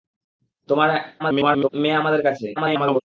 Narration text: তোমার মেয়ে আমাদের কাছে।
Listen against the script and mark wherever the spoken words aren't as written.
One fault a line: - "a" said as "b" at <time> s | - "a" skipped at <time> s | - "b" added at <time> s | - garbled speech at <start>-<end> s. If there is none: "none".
- garbled speech at 1.2-1.7 s
- garbled speech at 2.6-3.0 s